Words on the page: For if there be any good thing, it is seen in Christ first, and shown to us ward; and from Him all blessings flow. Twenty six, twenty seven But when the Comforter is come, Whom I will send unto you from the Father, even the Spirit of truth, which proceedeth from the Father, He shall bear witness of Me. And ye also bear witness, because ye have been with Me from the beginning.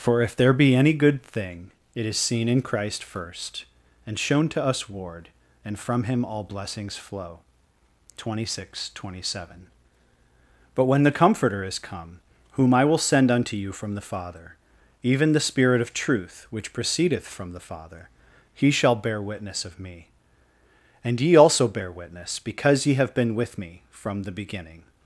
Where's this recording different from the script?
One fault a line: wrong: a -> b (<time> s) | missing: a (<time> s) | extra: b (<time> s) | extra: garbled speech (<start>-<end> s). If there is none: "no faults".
no faults